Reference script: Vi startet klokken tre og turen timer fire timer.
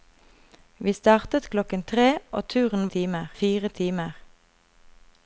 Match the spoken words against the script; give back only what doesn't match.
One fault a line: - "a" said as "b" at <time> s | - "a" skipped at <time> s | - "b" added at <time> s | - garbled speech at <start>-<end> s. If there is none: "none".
none